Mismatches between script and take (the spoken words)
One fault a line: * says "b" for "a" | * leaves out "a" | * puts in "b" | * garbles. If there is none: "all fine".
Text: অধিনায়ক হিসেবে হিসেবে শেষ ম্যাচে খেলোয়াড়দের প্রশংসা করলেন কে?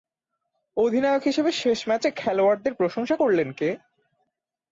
* leaves out "হিসেবে"